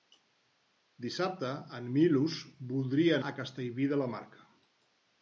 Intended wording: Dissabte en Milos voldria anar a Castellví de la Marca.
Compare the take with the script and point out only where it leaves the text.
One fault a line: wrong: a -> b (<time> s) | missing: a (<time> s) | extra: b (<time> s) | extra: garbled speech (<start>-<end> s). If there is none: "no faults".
missing: anar (3.2 s)